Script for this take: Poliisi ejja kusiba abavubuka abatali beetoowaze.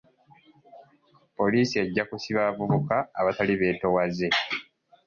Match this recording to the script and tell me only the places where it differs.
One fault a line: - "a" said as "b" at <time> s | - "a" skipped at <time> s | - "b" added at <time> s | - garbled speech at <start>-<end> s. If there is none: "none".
none